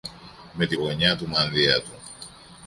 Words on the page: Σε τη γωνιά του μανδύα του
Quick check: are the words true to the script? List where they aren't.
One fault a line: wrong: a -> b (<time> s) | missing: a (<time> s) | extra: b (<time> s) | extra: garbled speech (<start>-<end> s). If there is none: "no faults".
wrong: Σε -> Με (0.5 s)